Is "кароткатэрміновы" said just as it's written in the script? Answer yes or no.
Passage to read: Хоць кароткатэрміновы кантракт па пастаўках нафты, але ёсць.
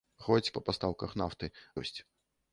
no